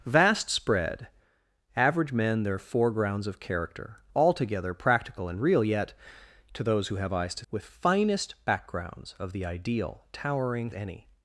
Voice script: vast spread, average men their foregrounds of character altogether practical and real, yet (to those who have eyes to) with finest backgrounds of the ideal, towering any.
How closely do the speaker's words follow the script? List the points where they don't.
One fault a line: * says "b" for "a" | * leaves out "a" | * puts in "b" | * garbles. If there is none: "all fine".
all fine